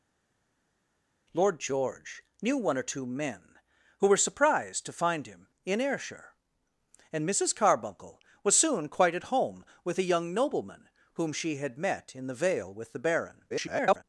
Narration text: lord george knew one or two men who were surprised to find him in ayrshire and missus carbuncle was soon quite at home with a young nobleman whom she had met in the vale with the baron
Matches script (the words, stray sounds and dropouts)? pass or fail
fail